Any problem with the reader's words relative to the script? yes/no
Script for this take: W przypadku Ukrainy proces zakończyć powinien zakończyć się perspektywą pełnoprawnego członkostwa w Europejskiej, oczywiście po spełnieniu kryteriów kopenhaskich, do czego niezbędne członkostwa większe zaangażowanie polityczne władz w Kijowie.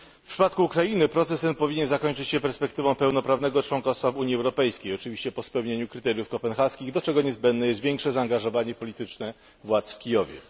yes